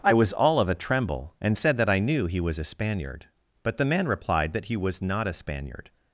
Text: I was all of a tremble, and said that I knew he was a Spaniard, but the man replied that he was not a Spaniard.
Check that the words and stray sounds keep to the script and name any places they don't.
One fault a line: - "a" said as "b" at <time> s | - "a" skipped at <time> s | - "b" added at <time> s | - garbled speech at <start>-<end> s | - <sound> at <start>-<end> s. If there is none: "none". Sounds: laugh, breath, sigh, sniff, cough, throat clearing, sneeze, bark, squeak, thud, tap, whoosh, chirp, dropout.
none